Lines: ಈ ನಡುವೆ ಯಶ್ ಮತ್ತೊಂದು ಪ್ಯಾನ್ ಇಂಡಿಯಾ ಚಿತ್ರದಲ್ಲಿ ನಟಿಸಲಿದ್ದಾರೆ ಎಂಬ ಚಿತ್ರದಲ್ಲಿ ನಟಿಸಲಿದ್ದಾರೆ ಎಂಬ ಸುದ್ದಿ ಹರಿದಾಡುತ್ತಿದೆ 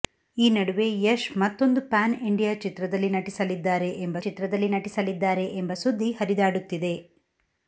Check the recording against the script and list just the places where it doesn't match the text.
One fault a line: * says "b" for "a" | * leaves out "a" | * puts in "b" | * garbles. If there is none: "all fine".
all fine